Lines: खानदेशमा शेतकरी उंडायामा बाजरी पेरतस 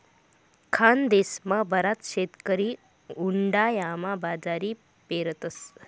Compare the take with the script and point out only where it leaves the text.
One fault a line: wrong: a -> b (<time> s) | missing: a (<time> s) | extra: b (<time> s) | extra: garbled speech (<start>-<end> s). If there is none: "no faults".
extra: बराच (1.7 s)